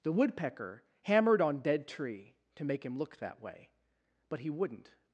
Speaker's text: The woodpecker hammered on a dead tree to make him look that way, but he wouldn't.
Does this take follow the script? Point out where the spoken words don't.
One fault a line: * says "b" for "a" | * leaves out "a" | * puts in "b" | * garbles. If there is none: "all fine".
* leaves out "a"